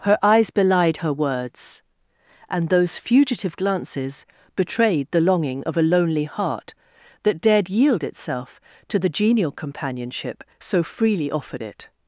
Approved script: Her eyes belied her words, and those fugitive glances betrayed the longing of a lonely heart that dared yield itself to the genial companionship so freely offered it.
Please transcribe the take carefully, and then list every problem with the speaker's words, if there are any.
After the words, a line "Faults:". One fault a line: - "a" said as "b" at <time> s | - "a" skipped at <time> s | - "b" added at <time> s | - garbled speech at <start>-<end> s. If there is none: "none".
Her eyes belied her words, and those fugitive glances betrayed the longing of a lonely heart that dared yield itself to the genial companionship so freely offered it.
Faults:
none